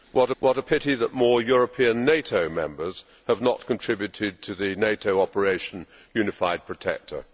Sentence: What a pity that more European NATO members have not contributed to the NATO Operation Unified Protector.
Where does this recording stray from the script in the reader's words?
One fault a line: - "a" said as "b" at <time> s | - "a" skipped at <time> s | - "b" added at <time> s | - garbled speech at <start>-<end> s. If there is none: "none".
- "what" added at 0.4 s